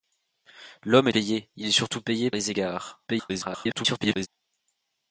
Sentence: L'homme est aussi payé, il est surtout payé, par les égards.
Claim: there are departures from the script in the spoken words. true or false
true